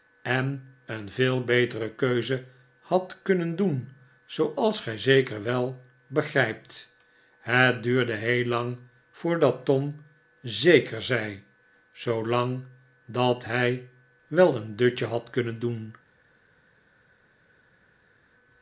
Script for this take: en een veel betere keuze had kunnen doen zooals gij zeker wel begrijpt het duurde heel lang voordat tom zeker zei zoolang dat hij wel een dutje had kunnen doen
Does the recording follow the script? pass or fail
pass